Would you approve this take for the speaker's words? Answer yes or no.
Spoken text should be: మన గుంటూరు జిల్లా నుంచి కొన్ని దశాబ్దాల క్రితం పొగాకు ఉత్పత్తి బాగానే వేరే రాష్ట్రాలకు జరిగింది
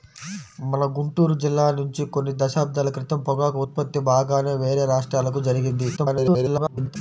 no